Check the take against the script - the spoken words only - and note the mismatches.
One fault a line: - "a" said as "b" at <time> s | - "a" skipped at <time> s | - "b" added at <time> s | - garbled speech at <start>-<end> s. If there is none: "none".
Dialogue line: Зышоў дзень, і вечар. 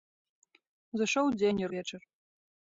none